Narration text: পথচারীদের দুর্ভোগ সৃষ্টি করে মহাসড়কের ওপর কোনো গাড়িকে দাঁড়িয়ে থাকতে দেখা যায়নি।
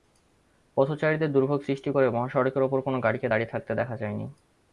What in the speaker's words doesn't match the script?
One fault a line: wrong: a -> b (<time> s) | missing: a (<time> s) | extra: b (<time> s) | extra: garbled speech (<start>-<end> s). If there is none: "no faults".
no faults